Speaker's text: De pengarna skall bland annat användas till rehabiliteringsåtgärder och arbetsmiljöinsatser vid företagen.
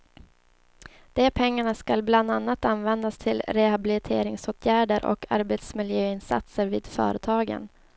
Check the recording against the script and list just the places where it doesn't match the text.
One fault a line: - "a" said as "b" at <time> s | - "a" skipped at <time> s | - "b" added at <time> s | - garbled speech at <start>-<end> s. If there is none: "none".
none